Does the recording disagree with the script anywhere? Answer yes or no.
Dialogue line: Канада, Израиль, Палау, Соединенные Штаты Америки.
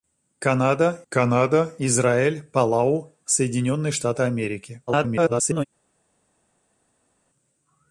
yes